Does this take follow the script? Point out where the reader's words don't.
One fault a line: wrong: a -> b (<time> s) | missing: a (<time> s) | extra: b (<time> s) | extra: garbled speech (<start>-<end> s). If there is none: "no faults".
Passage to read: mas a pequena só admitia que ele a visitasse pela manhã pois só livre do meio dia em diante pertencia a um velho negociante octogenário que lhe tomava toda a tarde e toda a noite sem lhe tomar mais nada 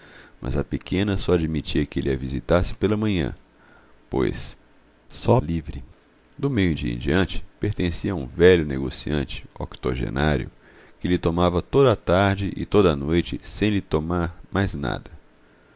no faults